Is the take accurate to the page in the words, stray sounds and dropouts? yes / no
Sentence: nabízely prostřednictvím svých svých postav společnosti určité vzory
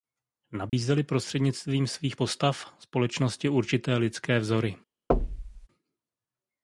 no